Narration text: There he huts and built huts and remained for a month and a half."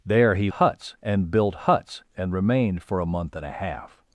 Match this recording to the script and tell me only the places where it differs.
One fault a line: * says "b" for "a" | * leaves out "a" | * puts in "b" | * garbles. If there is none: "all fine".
all fine